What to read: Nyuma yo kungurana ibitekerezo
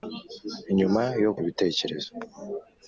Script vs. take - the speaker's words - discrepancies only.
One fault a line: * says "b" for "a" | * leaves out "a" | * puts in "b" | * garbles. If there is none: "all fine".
* leaves out "kungurana"